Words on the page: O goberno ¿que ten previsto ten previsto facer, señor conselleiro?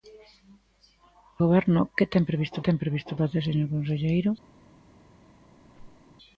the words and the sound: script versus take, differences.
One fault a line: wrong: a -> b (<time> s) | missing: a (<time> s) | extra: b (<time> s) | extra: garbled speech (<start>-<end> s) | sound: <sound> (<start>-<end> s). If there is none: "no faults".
sound: squeak (5.6-6.2 s)